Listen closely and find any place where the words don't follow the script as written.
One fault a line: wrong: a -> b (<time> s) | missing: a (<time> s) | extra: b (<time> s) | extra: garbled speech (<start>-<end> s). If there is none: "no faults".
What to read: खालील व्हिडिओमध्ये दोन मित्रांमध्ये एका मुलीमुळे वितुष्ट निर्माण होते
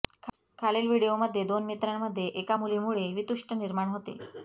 no faults